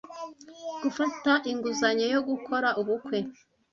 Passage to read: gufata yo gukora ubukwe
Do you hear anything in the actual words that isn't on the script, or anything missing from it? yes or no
yes